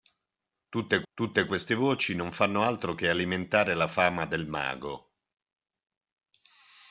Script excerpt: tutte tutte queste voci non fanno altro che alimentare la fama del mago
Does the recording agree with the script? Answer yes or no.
yes